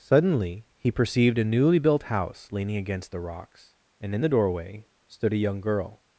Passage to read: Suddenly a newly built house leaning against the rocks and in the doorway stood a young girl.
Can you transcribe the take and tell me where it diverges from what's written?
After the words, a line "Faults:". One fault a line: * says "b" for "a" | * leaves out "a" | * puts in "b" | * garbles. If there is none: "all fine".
Suddenly he perceived a newly built house leaning against the rocks and in the doorway stood a young girl.
Faults:
* puts in "he perceived"